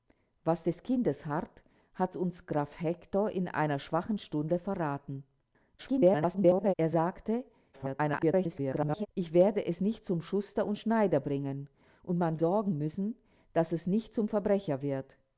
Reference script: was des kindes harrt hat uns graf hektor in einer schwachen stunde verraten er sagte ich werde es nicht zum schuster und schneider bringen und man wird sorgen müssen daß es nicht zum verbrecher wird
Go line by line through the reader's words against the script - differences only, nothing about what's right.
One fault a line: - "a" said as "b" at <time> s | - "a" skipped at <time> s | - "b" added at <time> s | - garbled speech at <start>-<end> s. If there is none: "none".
- garbled speech at 5.8-6.7 s
- garbled speech at 7.7-9.1 s
- "wird" skipped at 12.4 s